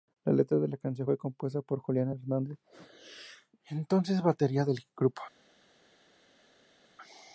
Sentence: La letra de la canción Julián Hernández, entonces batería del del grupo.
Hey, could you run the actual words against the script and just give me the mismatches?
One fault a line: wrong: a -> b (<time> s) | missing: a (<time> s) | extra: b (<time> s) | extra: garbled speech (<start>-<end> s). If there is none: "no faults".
extra: fue compuesta por (1.0 s)
missing: del (4.8 s)